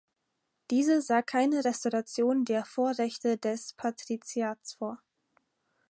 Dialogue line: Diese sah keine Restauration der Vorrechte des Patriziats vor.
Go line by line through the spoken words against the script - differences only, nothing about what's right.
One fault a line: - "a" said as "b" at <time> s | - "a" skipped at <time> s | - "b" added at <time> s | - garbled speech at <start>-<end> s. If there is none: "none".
none